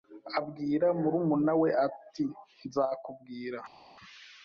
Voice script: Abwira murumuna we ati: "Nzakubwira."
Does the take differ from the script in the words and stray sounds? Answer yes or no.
no